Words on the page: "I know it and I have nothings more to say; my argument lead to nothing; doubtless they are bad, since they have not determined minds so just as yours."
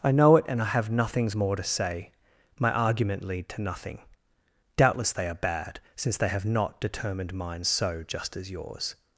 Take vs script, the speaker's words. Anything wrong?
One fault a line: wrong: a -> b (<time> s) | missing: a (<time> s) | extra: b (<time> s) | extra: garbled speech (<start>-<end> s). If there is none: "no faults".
no faults